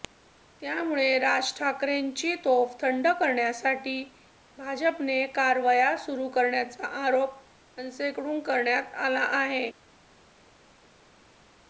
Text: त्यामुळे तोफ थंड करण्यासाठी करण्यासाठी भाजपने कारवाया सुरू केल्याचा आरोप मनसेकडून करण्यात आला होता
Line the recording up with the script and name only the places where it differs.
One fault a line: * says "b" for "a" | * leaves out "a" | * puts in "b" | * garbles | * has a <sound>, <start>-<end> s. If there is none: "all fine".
* puts in "राज ठाकरेंची"
* leaves out "करण्यासाठी"
* says "आहे" for "होता"